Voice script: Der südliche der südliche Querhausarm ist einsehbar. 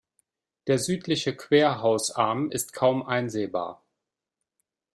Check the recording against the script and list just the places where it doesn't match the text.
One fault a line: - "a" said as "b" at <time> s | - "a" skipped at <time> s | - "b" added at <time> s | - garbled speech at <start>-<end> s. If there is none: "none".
- "der südliche" skipped at 1.4 s
- "kaum" added at 2.7 s